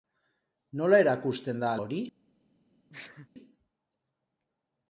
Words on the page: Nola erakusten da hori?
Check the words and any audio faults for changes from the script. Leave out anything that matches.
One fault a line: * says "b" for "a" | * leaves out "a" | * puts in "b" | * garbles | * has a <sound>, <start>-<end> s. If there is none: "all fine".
* has a sneeze, 2.9-3.3 s